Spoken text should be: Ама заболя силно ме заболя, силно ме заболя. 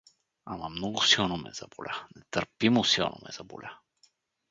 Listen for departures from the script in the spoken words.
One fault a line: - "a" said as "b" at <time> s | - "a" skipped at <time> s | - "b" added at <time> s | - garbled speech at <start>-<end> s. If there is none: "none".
- "заболя" said as "много" at 0.7 s
- "нетърпимо" added at 2.1 s